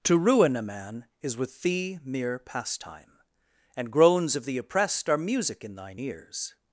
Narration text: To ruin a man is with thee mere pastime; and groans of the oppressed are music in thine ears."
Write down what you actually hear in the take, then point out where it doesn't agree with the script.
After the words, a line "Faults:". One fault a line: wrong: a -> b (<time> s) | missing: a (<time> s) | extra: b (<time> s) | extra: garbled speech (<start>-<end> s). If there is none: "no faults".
To ruin a man is with thee mere pastime; and groans of the oppressed are music in thine ears."
Faults:
no faults